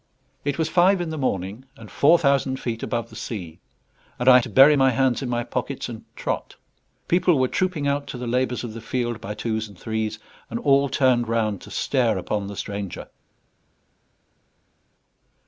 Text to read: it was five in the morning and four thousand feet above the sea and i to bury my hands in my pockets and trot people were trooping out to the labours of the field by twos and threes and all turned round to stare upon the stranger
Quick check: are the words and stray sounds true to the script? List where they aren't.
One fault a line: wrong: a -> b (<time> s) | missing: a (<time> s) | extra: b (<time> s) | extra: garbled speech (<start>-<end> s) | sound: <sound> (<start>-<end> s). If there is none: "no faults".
no faults